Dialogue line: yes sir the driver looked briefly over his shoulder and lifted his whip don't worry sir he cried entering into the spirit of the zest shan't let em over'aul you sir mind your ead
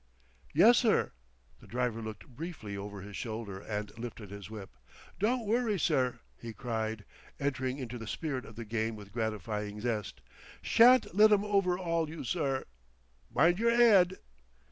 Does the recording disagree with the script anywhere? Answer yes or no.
yes